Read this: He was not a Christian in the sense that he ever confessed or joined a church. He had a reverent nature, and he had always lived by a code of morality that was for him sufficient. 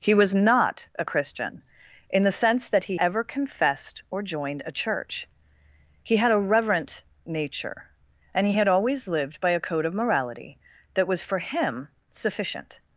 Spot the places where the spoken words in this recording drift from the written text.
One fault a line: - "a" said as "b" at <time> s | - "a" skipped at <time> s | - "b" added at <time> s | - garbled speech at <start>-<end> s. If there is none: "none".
none